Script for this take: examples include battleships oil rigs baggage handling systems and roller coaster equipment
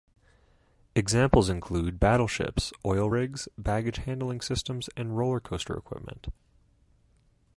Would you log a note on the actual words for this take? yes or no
no